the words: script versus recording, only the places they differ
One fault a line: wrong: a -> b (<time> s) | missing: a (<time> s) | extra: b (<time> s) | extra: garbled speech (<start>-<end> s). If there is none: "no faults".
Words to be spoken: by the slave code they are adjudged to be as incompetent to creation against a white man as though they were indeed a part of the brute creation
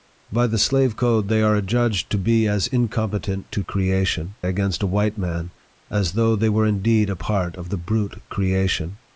no faults